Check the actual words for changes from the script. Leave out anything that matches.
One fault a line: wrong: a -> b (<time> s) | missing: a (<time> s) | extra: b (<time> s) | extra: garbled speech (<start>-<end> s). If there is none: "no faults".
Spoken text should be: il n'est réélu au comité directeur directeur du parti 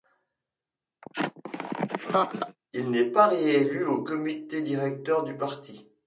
extra: pas (3.0 s)
missing: directeur (5.2 s)